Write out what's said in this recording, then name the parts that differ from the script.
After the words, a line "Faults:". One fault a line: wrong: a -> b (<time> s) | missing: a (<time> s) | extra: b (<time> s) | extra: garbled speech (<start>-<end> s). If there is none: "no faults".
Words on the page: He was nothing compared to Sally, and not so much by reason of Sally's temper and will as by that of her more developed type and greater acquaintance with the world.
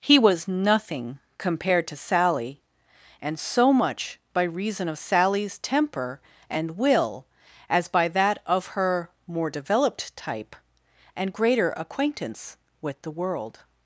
He was nothing compared to Sally, and so much by reason of Sally's temper and will as by that of her more developed type and greater acquaintance with the world.
Faults:
missing: not (3.4 s)